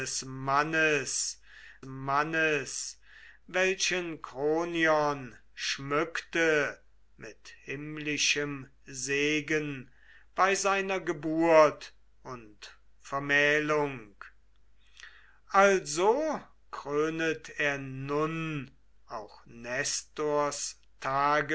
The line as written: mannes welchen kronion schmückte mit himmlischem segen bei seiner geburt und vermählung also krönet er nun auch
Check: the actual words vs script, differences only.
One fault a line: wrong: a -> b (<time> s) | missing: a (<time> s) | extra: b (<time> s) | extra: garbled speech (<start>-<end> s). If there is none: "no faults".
extra: mannes (1.9 s)